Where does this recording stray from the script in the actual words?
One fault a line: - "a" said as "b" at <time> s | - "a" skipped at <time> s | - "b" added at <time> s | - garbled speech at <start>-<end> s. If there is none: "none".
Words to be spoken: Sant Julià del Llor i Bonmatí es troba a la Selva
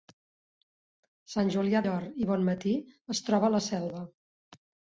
- "del" skipped at 1.8 s